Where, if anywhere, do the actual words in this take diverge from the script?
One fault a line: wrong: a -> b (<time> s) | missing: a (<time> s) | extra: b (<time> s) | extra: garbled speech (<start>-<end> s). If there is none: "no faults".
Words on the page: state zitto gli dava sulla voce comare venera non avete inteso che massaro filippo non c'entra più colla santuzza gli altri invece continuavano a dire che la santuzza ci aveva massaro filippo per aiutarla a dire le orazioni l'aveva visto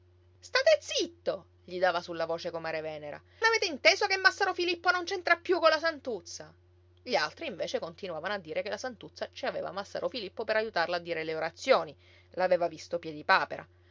missing: non (3.2 s)